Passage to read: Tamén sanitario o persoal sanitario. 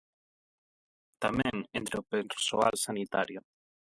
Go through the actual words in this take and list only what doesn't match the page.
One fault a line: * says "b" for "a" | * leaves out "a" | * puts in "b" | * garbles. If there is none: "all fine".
* says "entre" for "sanitario"